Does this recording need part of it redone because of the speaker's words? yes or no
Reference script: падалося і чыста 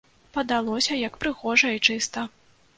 yes